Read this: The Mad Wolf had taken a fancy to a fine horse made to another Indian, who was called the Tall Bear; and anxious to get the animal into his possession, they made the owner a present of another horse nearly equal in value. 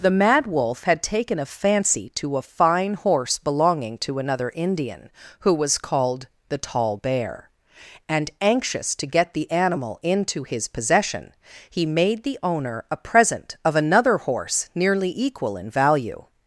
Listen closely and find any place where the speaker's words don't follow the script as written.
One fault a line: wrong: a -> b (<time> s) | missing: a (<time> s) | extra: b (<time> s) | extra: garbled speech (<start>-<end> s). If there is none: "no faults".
wrong: made -> belonging (3.4 s)
wrong: they -> he (11.7 s)